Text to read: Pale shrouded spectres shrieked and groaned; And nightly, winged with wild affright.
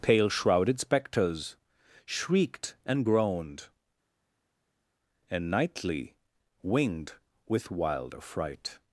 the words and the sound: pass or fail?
pass